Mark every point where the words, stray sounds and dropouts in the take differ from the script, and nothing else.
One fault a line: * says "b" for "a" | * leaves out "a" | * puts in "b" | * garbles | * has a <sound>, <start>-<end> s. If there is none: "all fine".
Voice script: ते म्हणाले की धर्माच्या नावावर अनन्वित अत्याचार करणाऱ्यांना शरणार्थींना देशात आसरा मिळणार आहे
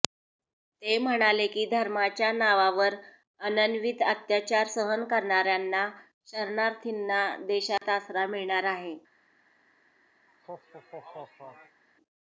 * puts in "सहन"
* has a dropout, 7.8-7.8 s
* has a laugh, 10.3-11.8 s